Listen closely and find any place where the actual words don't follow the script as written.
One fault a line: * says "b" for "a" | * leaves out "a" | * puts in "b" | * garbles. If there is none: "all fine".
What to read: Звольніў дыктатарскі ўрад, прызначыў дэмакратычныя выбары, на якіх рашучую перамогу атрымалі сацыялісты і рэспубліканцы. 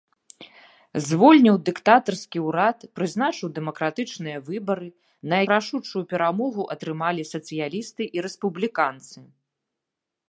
* leaves out "якіх"